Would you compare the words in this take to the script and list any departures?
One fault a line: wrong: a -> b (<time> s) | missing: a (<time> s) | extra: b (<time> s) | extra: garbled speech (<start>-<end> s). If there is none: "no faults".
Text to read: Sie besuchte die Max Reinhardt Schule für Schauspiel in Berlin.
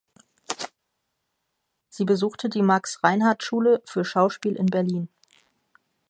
no faults